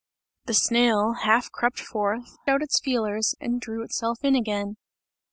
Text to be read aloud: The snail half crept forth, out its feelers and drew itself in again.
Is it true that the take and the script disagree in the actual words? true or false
false